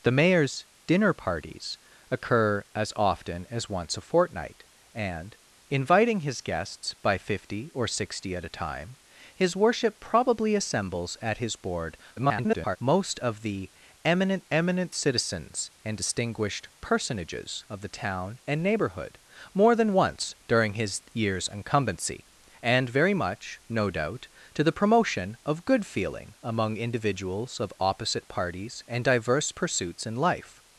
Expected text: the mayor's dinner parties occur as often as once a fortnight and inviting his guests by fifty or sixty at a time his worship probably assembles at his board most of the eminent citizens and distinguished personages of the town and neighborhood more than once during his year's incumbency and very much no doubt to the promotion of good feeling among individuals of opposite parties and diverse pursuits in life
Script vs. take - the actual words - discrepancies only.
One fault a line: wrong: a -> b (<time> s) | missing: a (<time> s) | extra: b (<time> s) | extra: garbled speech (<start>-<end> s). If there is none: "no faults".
extra: garbled speech (12.2-12.8 s)
extra: eminent (14.5 s)